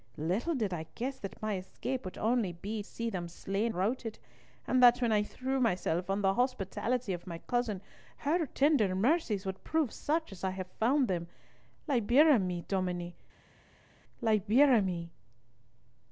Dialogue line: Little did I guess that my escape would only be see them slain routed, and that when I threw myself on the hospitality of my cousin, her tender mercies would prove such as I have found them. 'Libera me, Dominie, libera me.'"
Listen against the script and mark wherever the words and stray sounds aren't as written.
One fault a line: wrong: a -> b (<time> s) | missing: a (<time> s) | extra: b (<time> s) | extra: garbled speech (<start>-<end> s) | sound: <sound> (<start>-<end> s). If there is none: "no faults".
no faults